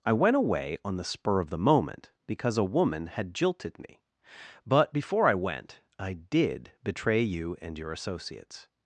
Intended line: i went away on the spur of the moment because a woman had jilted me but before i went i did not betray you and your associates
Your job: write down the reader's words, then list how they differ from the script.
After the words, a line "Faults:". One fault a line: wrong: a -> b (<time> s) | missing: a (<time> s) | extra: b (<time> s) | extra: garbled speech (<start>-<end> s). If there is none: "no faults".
i went away on the spur of the moment because a woman had jilted me but before i went i did betray you and your associates
Faults:
missing: not (6.7 s)